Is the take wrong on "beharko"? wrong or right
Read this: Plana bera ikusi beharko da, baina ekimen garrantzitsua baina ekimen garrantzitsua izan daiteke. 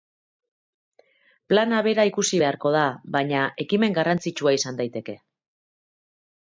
right